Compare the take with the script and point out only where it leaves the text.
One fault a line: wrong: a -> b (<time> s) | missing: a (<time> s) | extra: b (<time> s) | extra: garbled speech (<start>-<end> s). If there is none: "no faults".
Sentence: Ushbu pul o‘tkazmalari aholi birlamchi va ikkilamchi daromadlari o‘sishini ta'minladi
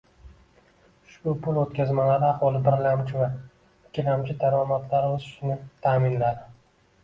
no faults